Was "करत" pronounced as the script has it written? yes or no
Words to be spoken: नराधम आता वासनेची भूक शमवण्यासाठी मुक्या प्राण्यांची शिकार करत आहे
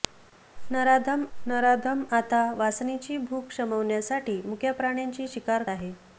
no